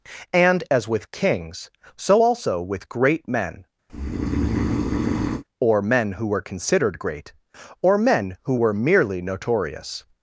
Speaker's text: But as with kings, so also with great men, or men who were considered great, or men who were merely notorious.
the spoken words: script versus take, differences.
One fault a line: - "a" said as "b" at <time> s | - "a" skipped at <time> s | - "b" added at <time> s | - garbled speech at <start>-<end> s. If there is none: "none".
- "But" said as "And" at 0.3 s